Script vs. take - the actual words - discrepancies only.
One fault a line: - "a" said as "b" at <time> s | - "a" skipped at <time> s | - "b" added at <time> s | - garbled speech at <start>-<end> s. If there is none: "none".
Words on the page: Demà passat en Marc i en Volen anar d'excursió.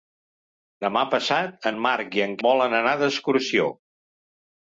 none